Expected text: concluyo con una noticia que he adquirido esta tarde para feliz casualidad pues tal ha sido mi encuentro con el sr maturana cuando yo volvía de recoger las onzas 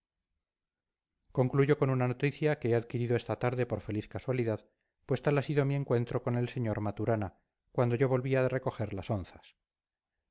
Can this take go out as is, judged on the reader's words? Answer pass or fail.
fail